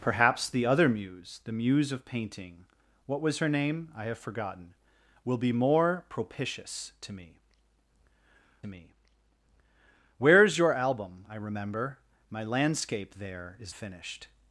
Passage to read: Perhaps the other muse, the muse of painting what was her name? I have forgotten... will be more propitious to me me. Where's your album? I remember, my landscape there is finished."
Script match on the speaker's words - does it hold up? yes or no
yes